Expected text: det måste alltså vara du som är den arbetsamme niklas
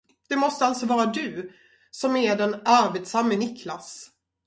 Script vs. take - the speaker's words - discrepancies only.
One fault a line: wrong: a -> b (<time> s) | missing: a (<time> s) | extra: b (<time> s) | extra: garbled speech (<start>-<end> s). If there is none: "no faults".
no faults